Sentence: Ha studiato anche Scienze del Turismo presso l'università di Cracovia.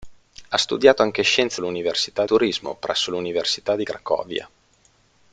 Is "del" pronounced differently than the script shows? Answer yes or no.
yes